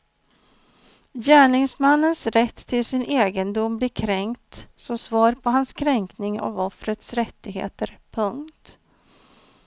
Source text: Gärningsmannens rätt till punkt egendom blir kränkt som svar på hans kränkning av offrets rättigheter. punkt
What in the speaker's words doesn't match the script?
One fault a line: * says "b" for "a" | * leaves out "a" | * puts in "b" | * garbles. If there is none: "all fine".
* says "sin" for "punkt"